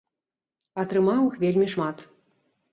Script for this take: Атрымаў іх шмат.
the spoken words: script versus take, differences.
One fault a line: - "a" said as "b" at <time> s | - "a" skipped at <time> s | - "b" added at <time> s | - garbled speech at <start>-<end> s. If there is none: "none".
- "вельмі" added at 1.5 s